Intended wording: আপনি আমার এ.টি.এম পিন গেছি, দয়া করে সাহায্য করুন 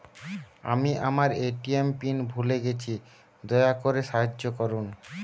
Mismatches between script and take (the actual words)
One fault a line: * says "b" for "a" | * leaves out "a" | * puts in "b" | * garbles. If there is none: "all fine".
* says "আমি" for "আপনি"
* puts in "ভুলে"